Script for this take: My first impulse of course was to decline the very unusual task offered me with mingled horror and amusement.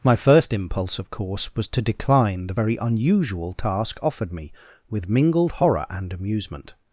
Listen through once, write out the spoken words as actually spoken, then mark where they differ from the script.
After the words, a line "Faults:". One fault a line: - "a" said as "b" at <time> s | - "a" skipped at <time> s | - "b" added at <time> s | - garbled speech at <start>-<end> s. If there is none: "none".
My first impulse of course was to decline the very unusual task offered me with mingled horror and amusement.
Faults:
none